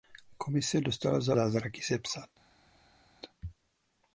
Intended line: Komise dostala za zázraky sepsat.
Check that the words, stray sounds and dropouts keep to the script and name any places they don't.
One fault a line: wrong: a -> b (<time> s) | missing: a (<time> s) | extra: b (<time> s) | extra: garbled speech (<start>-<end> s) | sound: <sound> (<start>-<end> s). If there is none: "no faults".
no faults